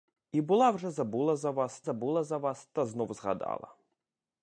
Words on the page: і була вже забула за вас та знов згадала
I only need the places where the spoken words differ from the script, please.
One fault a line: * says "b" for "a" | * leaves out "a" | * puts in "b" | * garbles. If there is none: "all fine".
* puts in "забула за вас"